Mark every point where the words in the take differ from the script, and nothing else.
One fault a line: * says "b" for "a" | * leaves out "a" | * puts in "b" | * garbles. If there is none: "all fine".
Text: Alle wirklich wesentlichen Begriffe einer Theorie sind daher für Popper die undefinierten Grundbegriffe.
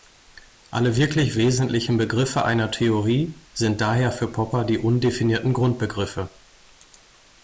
all fine